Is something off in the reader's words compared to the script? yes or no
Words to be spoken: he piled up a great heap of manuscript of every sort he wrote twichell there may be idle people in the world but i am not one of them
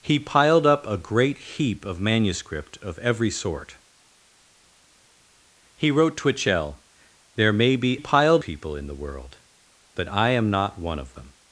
yes